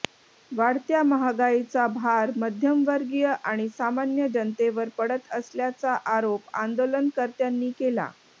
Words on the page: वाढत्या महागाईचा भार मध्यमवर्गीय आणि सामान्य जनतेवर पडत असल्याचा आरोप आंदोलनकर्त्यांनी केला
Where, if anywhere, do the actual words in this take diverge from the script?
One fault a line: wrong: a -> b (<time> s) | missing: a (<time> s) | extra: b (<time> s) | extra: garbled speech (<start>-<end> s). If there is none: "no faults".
no faults